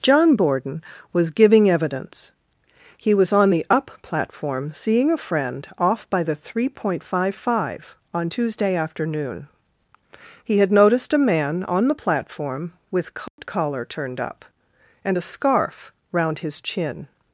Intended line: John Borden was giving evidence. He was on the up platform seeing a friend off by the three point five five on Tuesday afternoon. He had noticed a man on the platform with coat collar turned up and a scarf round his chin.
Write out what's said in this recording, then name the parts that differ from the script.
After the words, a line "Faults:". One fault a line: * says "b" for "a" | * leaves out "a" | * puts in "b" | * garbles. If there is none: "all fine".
John Borden was giving evidence. He was on the up platform seeing a friend off by the three point five five on Tuesday afternoon. He had noticed a man on the platform with coat collar turned up and a scarf round his chin.
Faults:
all fine